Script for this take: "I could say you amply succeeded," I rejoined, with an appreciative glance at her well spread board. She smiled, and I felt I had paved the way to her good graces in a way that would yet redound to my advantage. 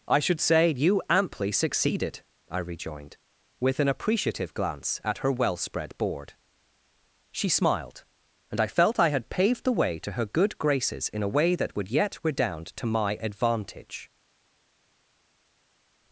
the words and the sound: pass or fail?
fail